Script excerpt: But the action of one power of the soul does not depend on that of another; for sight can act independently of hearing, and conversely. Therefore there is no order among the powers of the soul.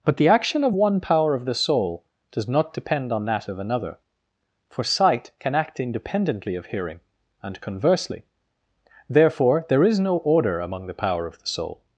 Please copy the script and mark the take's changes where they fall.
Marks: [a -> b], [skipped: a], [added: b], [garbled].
But the action of one power of the soul does not depend on that of another; for sight can act independently of hearing, and conversely. Therefore there is no order among the [powers -> power] of the soul.